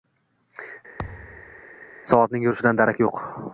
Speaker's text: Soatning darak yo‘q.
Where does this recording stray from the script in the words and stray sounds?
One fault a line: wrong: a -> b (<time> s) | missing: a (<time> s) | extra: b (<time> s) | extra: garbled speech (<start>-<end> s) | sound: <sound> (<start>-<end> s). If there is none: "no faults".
sound: thud (1.0-1.6 s)
extra: yurishidan (2.5 s)